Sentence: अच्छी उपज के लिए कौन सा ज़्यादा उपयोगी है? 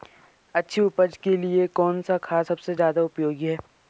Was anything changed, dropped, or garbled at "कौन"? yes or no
no